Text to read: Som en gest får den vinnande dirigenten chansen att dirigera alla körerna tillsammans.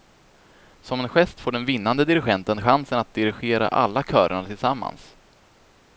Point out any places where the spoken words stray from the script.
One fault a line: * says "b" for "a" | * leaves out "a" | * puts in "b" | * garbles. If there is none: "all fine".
all fine